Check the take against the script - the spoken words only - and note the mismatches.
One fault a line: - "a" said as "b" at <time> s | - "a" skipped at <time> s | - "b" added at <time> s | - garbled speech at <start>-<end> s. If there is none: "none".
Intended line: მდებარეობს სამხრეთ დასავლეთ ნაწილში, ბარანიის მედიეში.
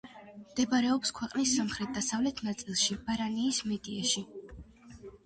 - "ქვეყნის" added at 1.2 s